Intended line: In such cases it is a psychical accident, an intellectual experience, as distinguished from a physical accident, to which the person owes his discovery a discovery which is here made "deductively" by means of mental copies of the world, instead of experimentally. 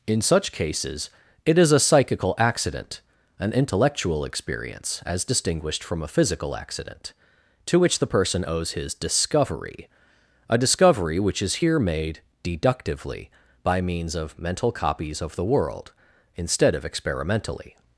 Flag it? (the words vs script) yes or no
no